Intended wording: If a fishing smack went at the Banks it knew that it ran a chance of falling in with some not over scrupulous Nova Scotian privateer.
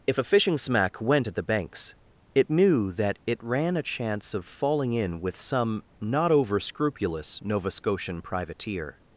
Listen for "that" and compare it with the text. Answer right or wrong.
right